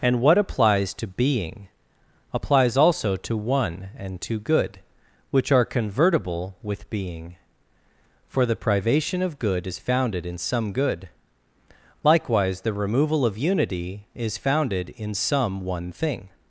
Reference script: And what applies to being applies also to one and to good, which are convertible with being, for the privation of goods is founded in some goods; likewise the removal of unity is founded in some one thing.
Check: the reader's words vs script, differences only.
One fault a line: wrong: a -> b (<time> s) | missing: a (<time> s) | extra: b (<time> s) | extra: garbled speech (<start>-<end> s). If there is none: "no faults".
wrong: goods -> good (9.4 s)
wrong: goods -> good (10.7 s)